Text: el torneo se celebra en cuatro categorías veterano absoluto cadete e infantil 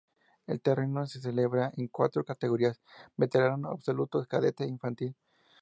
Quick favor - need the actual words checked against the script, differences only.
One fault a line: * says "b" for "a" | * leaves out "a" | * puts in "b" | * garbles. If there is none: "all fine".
all fine